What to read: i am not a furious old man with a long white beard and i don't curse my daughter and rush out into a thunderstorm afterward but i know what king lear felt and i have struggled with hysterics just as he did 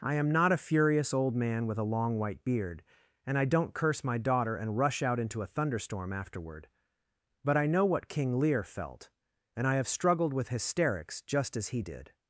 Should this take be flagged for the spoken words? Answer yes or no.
no